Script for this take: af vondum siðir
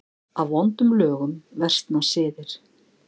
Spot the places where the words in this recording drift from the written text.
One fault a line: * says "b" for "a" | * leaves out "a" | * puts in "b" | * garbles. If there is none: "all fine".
* puts in "lögum versna"